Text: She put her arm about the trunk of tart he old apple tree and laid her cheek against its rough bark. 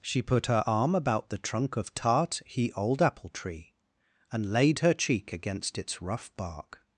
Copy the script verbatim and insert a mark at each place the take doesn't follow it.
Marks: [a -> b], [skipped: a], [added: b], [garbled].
She put her arm about the trunk of tart he old apple tree and laid her cheek against its rough bark.